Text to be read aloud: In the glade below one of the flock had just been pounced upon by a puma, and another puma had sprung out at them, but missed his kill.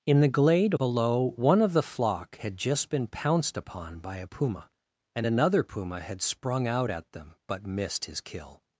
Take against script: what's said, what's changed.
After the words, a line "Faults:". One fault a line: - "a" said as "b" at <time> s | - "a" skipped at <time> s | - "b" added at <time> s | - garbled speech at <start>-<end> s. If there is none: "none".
In the glade below one of the flock had just been pounced upon by a puma, and another puma had sprung out at them, but missed his kill.
Faults:
none